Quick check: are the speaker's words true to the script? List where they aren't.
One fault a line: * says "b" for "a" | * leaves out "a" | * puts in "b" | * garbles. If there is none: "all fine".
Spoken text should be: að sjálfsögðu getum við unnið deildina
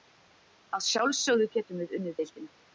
all fine